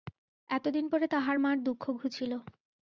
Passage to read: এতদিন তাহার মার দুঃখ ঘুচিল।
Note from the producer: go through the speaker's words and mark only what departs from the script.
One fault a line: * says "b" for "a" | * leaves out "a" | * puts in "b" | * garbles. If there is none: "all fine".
* puts in "পরে"